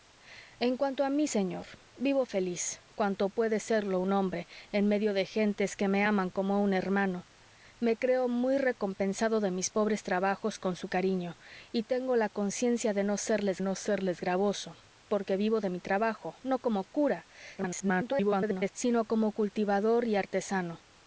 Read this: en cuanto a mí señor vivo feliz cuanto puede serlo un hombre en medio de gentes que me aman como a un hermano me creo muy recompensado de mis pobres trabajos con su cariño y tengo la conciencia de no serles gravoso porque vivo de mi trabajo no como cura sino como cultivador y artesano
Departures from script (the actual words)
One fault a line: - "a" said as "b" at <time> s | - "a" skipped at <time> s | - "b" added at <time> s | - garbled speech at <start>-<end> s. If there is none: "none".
- "no serles" added at 13.6 s
- garbled speech at 17.6-18.7 s